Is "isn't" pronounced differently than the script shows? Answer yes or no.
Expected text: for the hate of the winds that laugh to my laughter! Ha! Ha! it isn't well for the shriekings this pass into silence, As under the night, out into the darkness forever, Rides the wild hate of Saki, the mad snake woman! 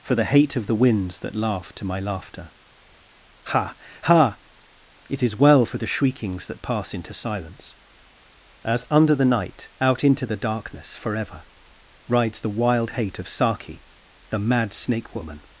yes